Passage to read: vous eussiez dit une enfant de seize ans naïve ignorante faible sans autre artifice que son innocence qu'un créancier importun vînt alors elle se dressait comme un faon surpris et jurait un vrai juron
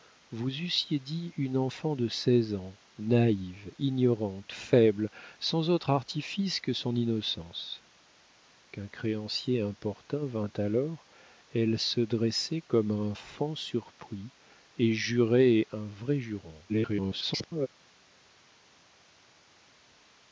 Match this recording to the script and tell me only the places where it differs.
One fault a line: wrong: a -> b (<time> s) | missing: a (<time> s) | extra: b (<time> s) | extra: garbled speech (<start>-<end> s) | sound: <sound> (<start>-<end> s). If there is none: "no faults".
extra: garbled speech (16.7-17.7 s)